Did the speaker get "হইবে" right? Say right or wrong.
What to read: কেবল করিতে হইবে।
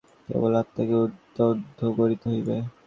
right